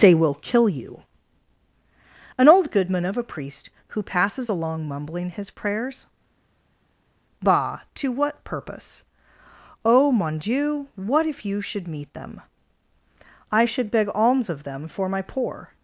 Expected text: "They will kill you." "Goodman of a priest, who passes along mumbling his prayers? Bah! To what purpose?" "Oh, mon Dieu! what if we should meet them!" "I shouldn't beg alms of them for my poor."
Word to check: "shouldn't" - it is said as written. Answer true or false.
false